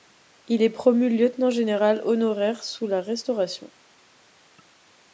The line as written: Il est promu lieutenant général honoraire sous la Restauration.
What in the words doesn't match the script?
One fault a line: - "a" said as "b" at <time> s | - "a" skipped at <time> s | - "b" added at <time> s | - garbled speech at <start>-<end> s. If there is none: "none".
none